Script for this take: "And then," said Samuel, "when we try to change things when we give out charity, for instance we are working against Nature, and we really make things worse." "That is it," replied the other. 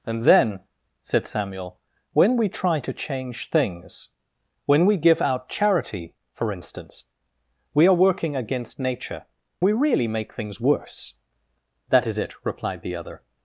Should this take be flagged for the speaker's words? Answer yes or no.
yes